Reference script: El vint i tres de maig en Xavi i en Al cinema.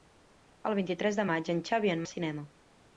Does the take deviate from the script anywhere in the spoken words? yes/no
no